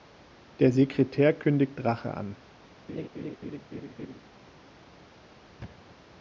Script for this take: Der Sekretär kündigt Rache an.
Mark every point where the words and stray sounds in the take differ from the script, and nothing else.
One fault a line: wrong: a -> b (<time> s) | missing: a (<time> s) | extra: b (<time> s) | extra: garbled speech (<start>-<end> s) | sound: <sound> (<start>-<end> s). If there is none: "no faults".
sound: laugh (2.9-4.2 s)
sound: thud (5.6-6.0 s)